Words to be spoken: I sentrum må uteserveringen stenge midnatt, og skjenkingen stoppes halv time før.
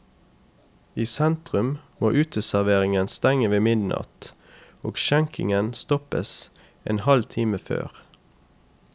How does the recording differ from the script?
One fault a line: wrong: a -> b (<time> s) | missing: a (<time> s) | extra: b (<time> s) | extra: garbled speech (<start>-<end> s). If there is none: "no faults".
extra: ved (3.5 s)
extra: en (6.8 s)